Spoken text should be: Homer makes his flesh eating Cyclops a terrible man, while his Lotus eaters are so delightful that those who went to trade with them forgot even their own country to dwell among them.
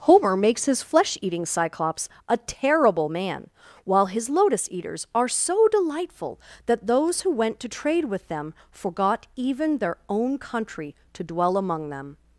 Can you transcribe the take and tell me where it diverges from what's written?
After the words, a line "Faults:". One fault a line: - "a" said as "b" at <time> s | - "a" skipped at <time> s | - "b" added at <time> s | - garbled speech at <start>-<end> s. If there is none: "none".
Homer makes his flesh eating Cyclops a terrible man, while his Lotus eaters are so delightful that those who went to trade with them forgot even their own country to dwell among them.
Faults:
none